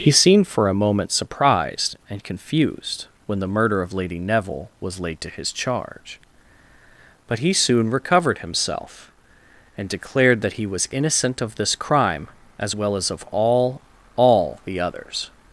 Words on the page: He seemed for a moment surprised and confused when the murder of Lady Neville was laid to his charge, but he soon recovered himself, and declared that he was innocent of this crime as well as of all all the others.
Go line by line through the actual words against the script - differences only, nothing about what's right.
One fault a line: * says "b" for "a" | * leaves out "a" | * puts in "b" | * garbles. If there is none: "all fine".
all fine